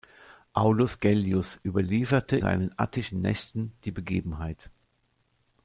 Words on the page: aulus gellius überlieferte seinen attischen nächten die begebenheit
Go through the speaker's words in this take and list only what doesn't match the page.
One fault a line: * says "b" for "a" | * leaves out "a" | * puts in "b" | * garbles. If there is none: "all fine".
all fine